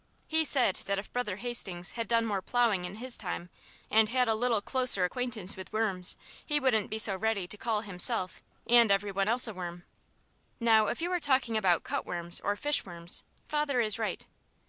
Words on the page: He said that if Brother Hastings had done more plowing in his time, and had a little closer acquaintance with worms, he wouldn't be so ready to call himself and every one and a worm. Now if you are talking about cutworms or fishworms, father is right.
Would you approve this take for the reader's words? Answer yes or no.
no